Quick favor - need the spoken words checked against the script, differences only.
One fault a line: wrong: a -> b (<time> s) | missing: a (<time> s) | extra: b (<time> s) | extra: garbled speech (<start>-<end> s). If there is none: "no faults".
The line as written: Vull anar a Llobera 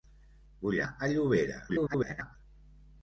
missing: anar (0.8 s)
extra: garbled speech (1.7-2.4 s)